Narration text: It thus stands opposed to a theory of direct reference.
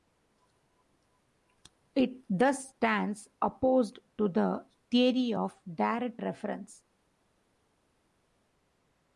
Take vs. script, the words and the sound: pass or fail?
fail